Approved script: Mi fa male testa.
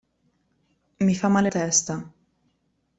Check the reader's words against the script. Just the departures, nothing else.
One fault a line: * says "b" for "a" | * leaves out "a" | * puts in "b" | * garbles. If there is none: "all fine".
all fine